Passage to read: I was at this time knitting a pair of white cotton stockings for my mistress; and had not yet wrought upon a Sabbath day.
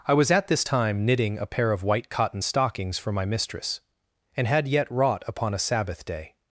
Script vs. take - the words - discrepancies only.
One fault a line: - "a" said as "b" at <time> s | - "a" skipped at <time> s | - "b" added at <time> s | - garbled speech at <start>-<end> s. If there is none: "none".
- "not" skipped at 4.7 s